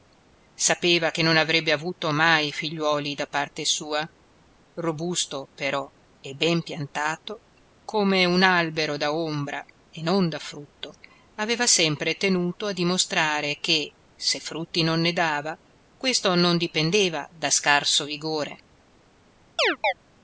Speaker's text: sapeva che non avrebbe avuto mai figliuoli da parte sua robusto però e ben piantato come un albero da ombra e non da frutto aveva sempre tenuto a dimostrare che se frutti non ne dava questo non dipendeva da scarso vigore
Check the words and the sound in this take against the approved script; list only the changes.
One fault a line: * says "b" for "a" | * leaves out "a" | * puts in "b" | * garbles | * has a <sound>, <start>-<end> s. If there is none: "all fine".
* has a chirp, 19.6-19.9 s